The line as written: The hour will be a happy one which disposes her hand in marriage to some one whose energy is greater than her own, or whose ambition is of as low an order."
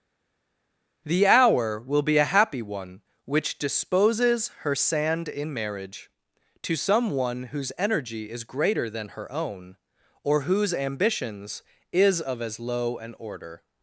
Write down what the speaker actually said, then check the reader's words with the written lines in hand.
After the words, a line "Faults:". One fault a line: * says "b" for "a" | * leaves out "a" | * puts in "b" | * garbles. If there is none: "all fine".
The hour will be a happy one which disposes her sand in marriage to some one whose energy is greater than her own, or whose ambitions is of as low an order."
Faults:
* says "sand" for "hand"
* says "ambitions" for "ambition"